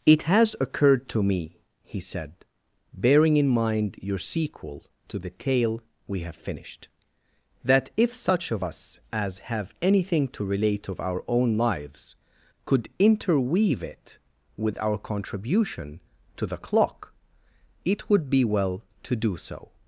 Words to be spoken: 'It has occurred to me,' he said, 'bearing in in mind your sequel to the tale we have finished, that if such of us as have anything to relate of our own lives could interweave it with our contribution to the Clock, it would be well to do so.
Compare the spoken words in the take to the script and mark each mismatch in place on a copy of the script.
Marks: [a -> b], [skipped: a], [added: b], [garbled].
'It has occurred to me,' he said, 'bearing in [skipped: in] mind your sequel to the tale we have finished, that if such of us as have anything to relate of our own lives could interweave it with our contribution to the Clock, it would be well to do so.